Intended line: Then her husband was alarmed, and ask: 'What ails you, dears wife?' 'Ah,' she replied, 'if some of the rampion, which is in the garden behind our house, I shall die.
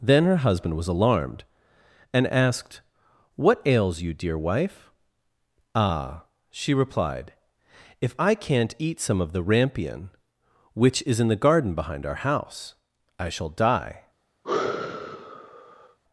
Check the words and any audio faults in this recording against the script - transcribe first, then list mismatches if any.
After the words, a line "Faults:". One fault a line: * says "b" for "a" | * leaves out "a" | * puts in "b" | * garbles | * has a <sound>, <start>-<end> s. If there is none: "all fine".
Then her husband was alarmed, and asked: 'What ails you, dear wife?' 'Ah,' she replied, 'if I can't eat some of the rampion, which is in the garden behind our house, I shall die.
Faults:
* says "asked" for "ask"
* says "dear" for "dears"
* puts in "I can't eat"
* has a sigh, 14.4-16.0 s